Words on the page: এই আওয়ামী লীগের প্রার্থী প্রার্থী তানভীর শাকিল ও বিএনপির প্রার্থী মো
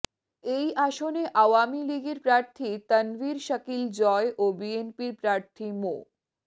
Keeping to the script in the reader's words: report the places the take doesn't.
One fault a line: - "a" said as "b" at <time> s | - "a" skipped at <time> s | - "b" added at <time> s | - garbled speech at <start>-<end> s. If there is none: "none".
- "আসনে" added at 0.8 s
- "প্রার্থী" skipped at 2.7 s
- "জয়" added at 4.0 s